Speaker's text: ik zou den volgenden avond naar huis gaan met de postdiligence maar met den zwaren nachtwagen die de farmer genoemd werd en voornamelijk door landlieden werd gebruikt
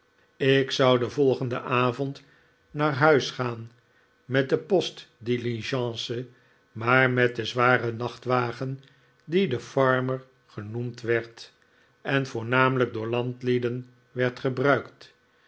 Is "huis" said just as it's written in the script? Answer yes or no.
yes